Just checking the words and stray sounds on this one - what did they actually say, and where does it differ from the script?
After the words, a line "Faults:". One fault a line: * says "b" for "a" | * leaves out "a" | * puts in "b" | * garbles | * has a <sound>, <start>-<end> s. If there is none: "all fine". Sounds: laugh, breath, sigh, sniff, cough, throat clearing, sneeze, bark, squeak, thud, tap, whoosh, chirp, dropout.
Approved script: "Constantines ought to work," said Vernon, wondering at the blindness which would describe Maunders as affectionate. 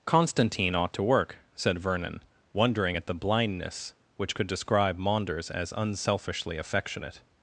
"Constantine ought to work," said Vernon, wondering at the blindness which could describe Maunders as unselfishly affectionate.
Faults:
* says "Constantine" for "Constantines"
* says "could" for "would"
* puts in "unselfishly"